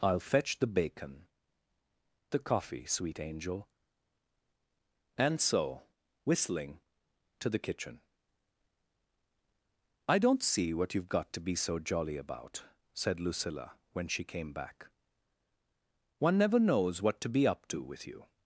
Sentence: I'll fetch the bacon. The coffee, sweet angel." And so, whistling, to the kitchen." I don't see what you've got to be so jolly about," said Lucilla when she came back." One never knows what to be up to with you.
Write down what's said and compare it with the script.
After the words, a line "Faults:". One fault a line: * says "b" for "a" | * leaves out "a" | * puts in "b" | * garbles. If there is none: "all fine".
I'll fetch the bacon. The coffee, sweet angel." And so, whistling, to the kitchen." I don't see what you've got to be so jolly about," said Lucilla when she came back." One never knows what to be up to with you.
Faults:
all fine